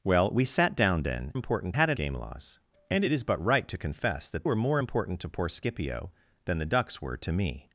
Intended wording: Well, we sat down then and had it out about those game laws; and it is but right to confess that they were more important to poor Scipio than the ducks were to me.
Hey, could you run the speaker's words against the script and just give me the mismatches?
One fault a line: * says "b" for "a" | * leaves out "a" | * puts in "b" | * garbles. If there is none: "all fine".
* says "important" for "and"
* leaves out "out about those"
* leaves out "they"